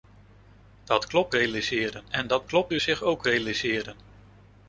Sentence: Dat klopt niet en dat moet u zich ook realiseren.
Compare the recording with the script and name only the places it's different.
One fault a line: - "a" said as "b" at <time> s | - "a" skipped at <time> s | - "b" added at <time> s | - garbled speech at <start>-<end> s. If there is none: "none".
- "niet" said as "realiseren" at 1.3 s
- "moet" said as "klopt" at 2.4 s